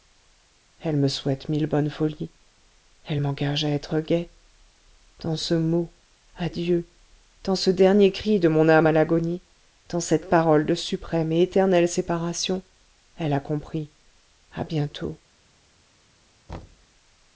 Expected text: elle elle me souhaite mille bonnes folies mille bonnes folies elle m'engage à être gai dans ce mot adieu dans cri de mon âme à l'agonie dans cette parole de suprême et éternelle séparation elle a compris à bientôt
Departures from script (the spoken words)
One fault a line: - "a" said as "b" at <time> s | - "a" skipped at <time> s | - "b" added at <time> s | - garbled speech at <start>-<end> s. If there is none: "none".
- "elle" skipped at 1.0 s
- "mille bonnes folies" skipped at 2.3 s
- "ce dernier" added at 7.6 s